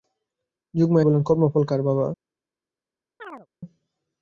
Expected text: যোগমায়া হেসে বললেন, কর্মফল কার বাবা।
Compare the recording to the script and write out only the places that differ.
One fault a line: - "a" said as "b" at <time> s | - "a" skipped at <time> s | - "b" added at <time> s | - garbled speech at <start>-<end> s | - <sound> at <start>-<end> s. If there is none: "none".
- "হেসে" skipped at 1.1 s
- chirp at 3.2-3.5 s